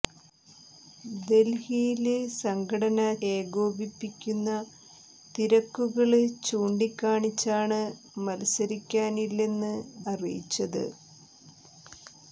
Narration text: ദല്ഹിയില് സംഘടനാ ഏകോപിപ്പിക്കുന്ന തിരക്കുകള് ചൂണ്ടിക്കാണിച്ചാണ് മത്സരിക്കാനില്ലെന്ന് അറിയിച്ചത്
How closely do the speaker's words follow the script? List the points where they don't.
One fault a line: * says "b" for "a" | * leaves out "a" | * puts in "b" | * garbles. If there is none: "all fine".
all fine